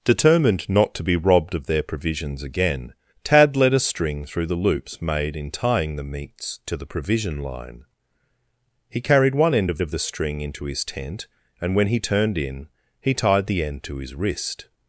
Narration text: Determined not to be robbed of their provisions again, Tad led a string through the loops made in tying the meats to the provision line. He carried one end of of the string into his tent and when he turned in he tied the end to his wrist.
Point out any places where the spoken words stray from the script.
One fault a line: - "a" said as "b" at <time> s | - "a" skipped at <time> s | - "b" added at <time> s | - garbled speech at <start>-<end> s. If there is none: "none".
none